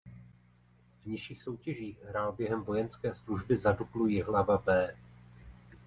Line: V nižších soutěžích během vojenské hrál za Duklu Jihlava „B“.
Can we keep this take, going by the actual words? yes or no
no